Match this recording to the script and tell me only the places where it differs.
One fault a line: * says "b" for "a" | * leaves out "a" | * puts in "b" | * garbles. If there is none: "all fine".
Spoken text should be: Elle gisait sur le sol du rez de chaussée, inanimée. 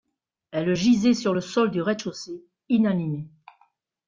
all fine